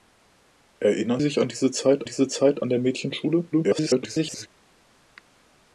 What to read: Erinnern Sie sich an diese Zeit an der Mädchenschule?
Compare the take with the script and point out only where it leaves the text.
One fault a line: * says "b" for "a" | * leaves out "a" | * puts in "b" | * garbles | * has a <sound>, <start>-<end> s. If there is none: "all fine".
* leaves out "Sie"
* puts in "diese Zeit"
* garbles